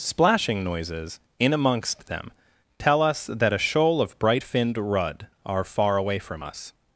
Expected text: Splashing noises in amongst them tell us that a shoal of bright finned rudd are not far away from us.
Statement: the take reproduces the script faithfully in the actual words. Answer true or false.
false